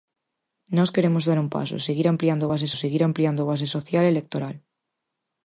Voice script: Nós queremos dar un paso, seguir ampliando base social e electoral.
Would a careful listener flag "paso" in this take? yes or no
no